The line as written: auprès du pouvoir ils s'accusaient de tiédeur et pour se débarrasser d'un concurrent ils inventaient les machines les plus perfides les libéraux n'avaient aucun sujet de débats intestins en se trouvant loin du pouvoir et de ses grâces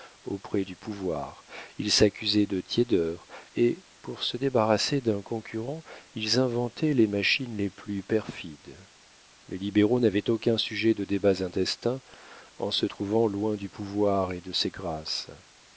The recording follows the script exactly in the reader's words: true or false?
true